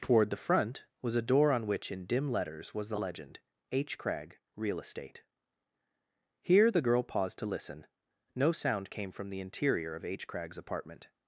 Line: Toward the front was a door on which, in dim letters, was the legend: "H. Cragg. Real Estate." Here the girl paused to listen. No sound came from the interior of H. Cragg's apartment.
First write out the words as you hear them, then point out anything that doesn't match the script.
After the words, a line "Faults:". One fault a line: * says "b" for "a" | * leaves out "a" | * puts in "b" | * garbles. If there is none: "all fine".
Toward the front was a door on which, in dim letters, was the legend: "H. Cragg. Real Estate." Here the girl paused to listen. No sound came from the interior of H. Cragg's apartment.
Faults:
all fine